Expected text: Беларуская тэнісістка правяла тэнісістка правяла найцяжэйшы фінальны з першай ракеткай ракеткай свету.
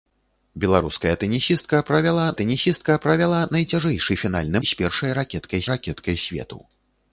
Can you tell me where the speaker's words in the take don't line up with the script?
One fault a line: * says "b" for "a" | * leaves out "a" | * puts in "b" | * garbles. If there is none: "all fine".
all fine